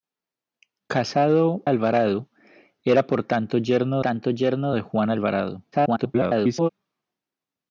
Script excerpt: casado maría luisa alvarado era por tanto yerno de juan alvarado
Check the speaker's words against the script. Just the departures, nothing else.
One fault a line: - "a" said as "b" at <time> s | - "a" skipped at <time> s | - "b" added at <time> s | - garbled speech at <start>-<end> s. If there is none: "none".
- "maría luisa" skipped at 1.6 s
- "tanto yerno" added at 4.0 s
- garbled speech at 5.7-6.7 s